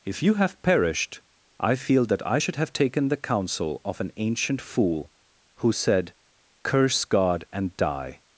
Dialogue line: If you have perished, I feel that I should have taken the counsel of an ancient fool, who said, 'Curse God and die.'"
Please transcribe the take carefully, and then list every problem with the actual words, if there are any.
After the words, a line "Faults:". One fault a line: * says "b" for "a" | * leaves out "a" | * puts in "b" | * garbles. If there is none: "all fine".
If you have perished, I feel that I should have taken the counsel of an ancient fool, who said, 'Curse God and die.'"
Faults:
all fine